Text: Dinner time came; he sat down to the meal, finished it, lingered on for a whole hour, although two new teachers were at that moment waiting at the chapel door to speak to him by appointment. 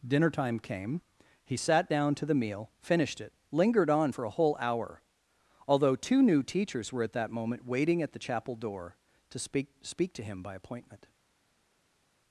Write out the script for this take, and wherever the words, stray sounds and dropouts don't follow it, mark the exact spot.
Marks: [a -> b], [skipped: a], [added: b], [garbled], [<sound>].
Dinner time came; he sat down to the meal, finished it, lingered on for a whole hour, although two new teachers were at that moment waiting at the chapel door to speak [added: speak] to him by appointment.